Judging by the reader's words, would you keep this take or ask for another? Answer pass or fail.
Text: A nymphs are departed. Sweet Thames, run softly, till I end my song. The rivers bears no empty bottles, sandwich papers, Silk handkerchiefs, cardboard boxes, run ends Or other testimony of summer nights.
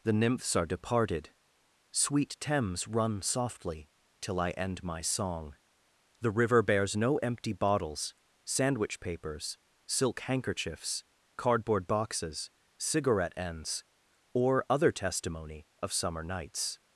fail